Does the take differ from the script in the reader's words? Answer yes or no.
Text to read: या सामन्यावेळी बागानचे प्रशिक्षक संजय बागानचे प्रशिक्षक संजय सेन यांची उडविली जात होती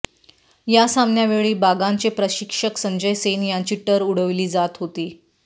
yes